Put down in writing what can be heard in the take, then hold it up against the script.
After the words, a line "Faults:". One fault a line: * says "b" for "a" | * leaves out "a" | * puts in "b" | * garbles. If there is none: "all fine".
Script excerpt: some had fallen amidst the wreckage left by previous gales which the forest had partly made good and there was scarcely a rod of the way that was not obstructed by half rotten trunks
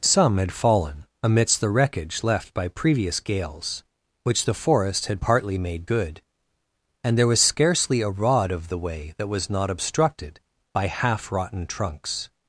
some had fallen amidst the wreckage left by previous gales which the forest had partly made good and there was scarcely a rod of the way that was not obstructed by half rotten trunks
Faults:
all fine